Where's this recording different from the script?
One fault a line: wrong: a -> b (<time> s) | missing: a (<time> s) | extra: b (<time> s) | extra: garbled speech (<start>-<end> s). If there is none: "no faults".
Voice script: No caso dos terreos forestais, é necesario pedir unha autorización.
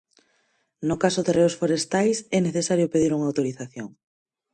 missing: dos (1.2 s)